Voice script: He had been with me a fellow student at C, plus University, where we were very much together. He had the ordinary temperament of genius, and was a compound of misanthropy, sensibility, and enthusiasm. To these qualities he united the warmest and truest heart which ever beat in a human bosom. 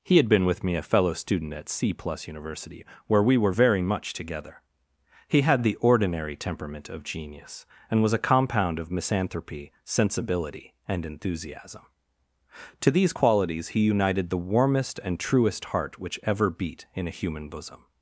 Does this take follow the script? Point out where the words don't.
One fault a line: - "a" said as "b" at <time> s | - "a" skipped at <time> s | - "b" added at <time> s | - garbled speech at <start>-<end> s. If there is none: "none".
none